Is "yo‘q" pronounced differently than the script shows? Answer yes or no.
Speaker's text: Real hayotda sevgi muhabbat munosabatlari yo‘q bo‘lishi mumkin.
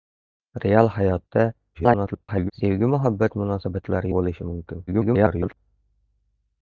yes